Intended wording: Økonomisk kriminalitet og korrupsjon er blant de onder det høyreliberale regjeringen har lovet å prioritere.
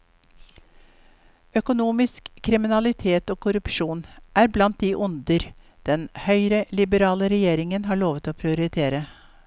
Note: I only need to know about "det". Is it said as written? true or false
false